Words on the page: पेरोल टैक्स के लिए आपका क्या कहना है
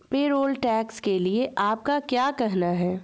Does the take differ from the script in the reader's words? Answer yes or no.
no